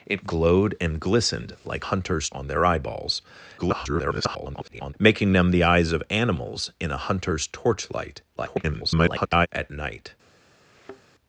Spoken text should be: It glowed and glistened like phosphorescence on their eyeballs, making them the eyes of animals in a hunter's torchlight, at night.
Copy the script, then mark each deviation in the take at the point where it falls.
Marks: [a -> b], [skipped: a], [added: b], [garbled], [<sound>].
It glowed and glistened like [phosphorescence -> hunter's] on their eyeballs, [garbled] making them the eyes of animals in a hunter's torchlight, [garbled] at night. [thud]